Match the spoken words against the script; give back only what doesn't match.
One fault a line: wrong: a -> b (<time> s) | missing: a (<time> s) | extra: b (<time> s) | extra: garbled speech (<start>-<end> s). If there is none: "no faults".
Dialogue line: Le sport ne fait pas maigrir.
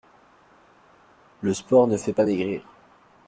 no faults